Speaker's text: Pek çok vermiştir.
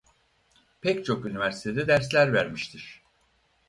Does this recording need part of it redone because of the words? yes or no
yes